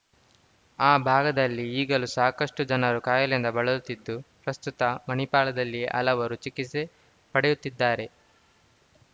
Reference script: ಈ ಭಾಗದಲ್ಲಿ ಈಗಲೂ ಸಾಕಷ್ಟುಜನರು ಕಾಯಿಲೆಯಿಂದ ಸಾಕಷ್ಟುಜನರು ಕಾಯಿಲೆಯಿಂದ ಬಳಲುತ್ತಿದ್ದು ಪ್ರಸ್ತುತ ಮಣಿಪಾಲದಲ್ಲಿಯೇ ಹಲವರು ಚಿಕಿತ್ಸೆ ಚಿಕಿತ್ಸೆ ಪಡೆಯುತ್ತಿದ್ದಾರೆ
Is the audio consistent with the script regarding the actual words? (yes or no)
no